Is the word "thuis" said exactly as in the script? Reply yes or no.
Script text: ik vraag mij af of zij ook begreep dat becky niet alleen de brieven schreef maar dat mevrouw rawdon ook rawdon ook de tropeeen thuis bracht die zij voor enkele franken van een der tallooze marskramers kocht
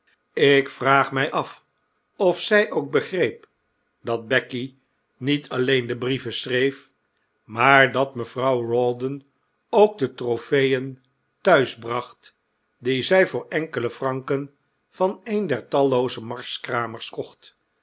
yes